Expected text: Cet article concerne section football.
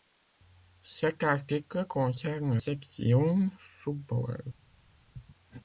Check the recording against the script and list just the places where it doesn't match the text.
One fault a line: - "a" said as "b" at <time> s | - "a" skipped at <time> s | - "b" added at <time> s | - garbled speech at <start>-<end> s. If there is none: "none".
none